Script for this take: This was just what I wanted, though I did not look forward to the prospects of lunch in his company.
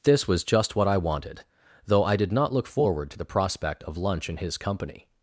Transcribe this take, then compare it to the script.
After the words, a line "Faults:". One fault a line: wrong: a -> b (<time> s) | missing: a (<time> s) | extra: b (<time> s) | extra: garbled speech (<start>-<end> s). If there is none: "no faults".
This was just what I wanted, though I did not look forward to the prospect of lunch in his company.
Faults:
wrong: prospects -> prospect (3.2 s)